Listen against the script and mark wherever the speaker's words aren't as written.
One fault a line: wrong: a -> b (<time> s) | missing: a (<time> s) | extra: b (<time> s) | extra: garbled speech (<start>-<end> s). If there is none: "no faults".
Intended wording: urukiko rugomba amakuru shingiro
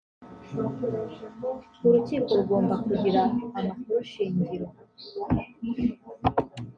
extra: kugira (2.8 s)